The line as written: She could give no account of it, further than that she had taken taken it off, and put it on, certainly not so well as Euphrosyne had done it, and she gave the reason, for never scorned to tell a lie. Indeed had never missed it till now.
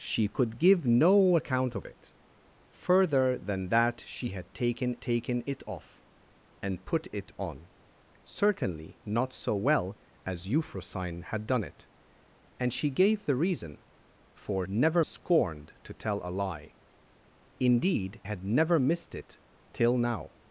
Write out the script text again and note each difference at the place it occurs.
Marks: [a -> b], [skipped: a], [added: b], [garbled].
She could give no account of it, further than that she had taken taken it off, and put it on, certainly not so well as Euphrosyne had done it, and she gave the reason, for never scorned to tell a lie. Indeed had never missed it till now.